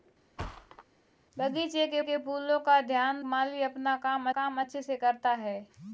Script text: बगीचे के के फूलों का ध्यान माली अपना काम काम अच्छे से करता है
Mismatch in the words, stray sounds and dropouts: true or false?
true